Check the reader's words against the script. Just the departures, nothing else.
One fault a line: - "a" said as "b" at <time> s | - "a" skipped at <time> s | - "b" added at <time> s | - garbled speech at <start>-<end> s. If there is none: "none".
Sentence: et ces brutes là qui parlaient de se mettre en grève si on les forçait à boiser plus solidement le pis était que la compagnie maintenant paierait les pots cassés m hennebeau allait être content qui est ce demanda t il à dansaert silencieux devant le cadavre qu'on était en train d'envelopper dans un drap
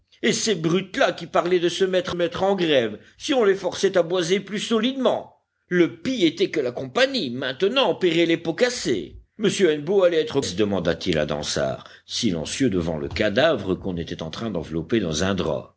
- "mettre" added at 2.1 s
- "content qui est" skipped at 10.4 s